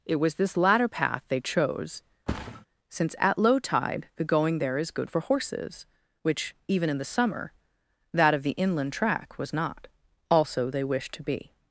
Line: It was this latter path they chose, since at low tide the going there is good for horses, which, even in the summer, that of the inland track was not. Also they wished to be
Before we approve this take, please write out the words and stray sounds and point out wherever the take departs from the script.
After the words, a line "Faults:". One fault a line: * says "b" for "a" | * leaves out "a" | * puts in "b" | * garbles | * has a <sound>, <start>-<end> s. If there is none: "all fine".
It was this latter path they chose, since at low tide the going there is good for horses, which, even in the summer, that of the inland track was not. Also they wished to be
Faults:
* has a thud, 2.3-2.7 s